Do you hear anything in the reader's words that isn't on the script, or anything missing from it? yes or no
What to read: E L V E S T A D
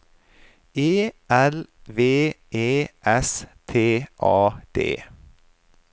no